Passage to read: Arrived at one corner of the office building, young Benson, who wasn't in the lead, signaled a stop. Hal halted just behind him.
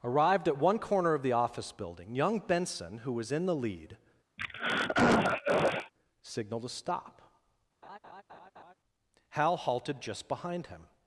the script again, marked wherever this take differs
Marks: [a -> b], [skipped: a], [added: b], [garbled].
Arrived at one corner of the office building, young Benson, who [wasn't -> was] in the lead, signaled a stop. Hal halted just behind him.